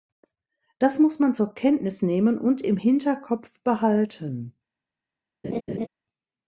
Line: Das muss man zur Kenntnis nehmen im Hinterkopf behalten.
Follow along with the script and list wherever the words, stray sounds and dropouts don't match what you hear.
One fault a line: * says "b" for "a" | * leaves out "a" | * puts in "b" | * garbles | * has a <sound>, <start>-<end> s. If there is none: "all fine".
* puts in "und"
* has a laugh, 5.4-5.9 s